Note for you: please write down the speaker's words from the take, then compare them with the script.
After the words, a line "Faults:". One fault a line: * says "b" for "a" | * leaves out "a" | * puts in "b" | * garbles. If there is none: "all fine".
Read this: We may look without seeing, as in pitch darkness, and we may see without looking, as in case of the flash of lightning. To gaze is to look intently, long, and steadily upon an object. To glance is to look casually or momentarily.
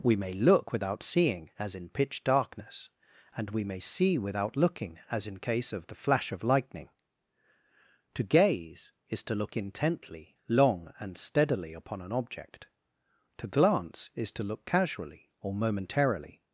We may look without seeing, as in pitch darkness, and we may see without looking, as in case of the flash of lightning. To gaze is to look intently, long, and steadily upon an object. To glance is to look casually or momentarily.
Faults:
all fine